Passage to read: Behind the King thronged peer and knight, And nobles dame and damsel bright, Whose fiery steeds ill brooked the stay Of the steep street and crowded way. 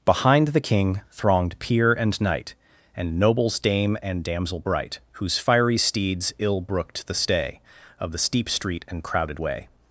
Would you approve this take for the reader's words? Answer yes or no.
yes